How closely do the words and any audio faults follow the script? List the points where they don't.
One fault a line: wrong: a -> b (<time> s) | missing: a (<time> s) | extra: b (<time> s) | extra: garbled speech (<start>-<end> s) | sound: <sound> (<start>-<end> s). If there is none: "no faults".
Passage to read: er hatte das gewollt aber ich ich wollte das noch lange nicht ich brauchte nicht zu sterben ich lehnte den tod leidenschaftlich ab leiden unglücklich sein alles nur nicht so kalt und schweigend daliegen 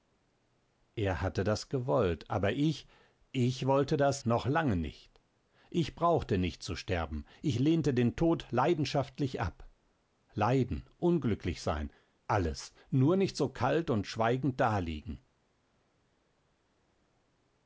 no faults